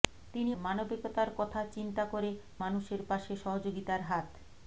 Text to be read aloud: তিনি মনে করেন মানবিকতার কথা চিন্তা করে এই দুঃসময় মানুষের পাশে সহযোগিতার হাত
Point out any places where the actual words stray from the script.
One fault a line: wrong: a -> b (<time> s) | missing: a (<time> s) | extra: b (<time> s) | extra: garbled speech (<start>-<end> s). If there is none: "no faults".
missing: মনে করেন (0.5 s)
missing: এই দুঃসময় (2.3 s)